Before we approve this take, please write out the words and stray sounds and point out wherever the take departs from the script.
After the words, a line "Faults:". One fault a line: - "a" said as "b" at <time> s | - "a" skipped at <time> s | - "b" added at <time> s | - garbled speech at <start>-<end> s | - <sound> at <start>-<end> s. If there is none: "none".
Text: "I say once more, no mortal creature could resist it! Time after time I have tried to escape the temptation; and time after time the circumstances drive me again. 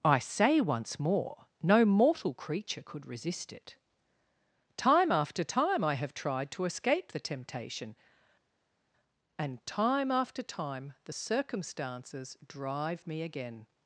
"I say once more, no mortal creature could resist it! Time after time I have tried to escape the temptation; and time after time the circumstances drive me again.
Faults:
none